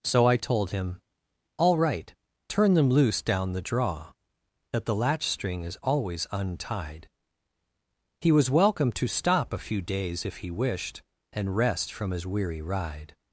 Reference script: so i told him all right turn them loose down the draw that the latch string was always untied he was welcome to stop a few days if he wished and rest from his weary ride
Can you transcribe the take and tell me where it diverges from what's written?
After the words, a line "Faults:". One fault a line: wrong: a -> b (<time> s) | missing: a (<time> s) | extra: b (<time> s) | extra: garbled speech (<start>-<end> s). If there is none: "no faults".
so i told him all right turn them loose down the draw that the latch string is always untied he was welcome to stop a few days if he wished and rest from his weary ride
Faults:
wrong: was -> is (5.6 s)